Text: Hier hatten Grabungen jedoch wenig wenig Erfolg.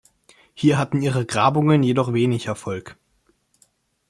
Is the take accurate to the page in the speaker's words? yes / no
no